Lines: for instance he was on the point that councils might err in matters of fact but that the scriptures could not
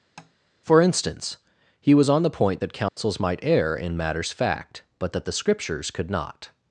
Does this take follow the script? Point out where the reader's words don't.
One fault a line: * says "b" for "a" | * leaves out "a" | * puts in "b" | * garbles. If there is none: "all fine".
* leaves out "of"